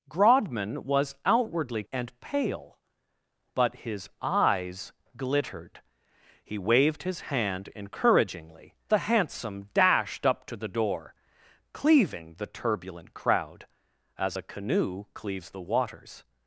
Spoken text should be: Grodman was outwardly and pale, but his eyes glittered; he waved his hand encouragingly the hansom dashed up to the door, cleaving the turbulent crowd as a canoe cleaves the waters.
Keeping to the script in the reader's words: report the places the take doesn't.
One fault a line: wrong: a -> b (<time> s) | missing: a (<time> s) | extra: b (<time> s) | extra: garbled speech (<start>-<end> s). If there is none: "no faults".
no faults